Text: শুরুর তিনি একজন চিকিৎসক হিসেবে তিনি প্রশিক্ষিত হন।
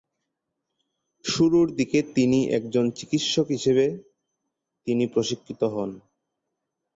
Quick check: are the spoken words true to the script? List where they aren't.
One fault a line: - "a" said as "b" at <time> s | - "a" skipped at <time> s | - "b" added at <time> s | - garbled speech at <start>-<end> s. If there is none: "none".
- "দিকে" added at 1.8 s